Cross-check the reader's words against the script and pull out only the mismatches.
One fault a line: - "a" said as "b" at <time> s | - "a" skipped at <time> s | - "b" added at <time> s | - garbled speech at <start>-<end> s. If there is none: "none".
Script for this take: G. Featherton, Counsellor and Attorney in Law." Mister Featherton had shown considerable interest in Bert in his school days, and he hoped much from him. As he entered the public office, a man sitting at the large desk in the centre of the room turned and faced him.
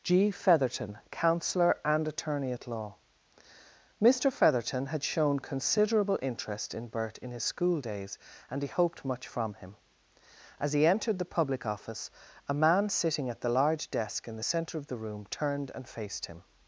- "in" said as "at" at 2.5 s